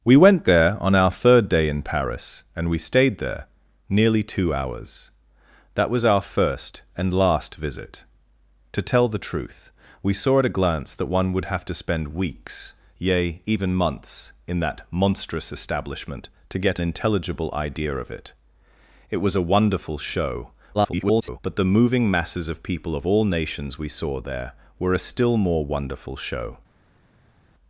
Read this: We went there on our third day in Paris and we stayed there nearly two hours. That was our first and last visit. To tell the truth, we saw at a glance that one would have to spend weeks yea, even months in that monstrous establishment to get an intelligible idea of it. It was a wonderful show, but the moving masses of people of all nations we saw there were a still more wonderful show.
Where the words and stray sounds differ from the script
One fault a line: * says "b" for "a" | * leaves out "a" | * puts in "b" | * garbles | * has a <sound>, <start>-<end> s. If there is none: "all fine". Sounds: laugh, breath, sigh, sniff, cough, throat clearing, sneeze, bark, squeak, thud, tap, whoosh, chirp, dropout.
* leaves out "an"
* garbles